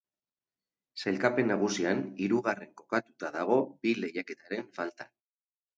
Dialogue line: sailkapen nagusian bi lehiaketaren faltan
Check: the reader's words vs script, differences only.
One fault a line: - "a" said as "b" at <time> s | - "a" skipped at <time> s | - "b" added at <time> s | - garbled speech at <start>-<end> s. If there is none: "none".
- "hirugarren kokatuta dago" added at 2.2 s